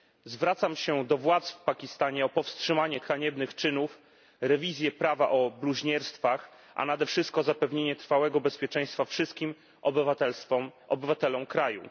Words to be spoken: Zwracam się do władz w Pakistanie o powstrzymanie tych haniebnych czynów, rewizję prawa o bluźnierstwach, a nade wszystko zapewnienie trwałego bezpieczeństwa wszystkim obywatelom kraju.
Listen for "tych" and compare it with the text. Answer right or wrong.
wrong